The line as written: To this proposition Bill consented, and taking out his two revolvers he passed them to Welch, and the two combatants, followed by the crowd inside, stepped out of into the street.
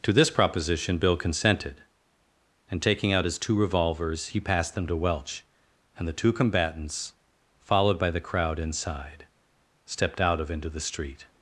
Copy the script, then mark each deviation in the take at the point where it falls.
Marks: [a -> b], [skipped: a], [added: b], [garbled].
To this proposition Bill consented, and taking out his two revolvers he passed them to Welch, and the two combatants, followed by the crowd inside, stepped out of into the street.